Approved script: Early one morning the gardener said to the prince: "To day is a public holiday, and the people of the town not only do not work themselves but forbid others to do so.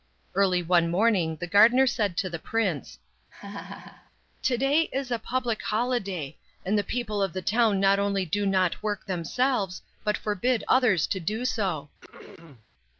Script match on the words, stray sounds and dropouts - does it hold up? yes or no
no